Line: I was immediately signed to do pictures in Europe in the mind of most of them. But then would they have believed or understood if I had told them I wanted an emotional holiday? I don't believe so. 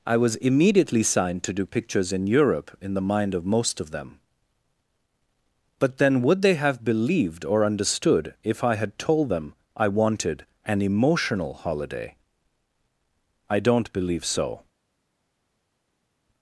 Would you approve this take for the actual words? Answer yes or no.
yes